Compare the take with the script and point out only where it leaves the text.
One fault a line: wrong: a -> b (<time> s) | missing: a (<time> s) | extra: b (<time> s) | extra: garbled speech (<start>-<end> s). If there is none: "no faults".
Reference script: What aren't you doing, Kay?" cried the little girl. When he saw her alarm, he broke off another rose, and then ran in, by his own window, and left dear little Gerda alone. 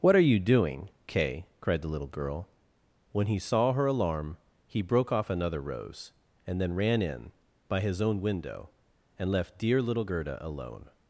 wrong: aren't -> are (0.1 s)